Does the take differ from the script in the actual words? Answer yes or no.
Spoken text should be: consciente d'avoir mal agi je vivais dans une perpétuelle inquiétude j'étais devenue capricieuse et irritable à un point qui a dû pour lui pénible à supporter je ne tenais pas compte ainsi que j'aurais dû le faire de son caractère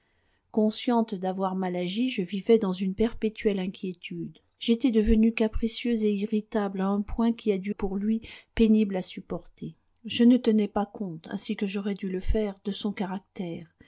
no